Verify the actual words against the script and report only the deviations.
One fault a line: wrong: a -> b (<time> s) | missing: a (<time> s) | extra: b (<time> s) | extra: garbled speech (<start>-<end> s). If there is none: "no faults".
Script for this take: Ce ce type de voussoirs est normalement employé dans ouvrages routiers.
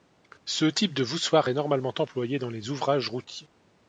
missing: ce (0.7 s)
extra: les (2.5 s)